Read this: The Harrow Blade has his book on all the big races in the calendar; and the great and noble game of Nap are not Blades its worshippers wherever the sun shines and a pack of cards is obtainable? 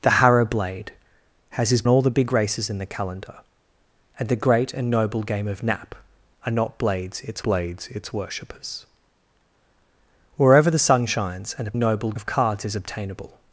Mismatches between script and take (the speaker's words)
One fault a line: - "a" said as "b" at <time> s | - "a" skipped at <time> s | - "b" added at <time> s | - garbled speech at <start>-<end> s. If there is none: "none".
- "book on" skipped at 1.8 s
- "Blades its" added at 7.4 s
- "pack" said as "noble" at 11.8 s